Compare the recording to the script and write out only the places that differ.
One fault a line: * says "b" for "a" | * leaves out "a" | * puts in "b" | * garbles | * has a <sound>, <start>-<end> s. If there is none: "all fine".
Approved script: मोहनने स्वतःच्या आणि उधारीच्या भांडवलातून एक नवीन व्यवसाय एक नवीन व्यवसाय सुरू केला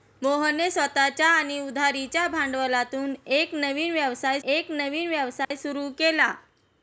* has a dropout, 5.4-5.5 s